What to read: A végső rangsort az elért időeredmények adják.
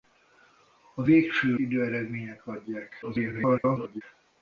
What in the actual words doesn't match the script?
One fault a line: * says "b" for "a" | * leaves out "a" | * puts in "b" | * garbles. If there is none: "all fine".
* leaves out "rangsort az elért"
* garbles